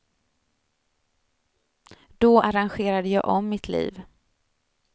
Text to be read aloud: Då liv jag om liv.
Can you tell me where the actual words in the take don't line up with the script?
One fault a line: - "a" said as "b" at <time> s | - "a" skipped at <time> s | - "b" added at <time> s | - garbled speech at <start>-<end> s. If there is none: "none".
- "liv" said as "arrangerade" at 2.4 s
- "mitt" added at 3.5 s